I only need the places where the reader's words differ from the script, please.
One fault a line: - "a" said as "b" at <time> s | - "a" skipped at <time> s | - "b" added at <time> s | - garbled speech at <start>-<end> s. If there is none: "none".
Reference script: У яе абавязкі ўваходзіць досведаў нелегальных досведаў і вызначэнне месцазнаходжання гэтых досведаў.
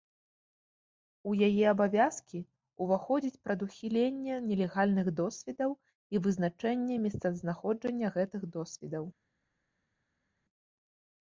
- "досведаў" said as "прадухіленне" at 3.5 s